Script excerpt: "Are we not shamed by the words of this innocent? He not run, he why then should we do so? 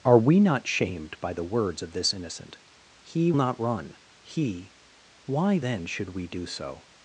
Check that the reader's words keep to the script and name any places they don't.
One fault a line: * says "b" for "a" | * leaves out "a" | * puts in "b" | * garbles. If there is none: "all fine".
all fine